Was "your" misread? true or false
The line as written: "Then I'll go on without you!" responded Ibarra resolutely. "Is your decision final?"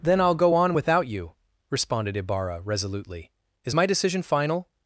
true